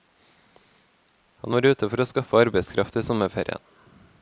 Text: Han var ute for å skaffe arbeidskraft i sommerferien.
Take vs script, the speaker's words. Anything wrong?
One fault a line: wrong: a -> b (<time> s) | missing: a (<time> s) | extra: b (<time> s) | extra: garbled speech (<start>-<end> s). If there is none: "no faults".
no faults